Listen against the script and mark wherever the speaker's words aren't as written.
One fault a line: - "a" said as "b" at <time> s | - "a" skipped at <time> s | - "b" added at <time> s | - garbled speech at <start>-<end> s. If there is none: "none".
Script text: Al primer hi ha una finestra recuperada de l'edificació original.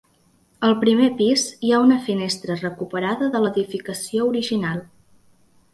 - "pis" added at 1.2 s